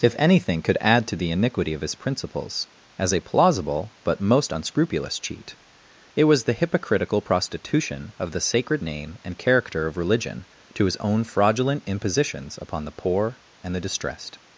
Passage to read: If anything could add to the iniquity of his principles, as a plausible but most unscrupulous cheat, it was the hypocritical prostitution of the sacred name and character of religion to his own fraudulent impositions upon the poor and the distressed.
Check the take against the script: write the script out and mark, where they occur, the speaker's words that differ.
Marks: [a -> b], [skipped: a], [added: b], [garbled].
If anything could add to the iniquity of his principles, as a plausible but most unscrupulous cheat, it was the hypocritical prostitution of the sacred name and character of religion to his own fraudulent impositions upon the poor and the distressed.